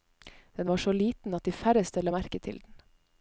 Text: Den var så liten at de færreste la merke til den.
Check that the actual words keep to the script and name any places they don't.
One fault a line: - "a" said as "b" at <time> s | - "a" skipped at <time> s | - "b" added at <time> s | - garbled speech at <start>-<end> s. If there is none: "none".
none